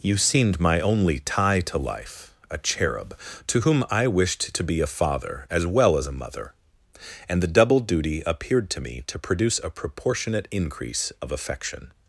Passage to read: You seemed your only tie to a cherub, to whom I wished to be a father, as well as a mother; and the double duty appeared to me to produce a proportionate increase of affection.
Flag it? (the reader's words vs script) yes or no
yes